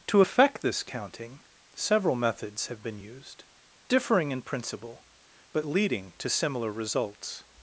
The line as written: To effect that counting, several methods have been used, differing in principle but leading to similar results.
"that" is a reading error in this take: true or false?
true